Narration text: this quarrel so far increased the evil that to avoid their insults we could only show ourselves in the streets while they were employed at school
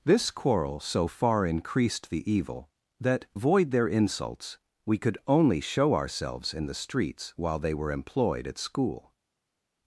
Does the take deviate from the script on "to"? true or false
true